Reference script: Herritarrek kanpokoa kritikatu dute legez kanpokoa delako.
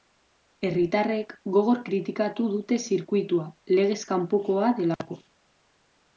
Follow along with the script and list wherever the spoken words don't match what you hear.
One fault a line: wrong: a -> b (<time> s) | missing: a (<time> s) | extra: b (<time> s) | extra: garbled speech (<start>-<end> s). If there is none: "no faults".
wrong: kanpokoa -> gogor (1.6 s)
extra: zirkuitua (2.9 s)